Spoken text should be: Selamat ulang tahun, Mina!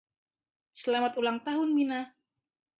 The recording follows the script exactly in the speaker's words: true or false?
true